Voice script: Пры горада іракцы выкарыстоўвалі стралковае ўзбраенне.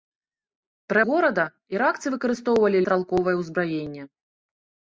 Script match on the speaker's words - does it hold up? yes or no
yes